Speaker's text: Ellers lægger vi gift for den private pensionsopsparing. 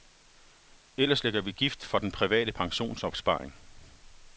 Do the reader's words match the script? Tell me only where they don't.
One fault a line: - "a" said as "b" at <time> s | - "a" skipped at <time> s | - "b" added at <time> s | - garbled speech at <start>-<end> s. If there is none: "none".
none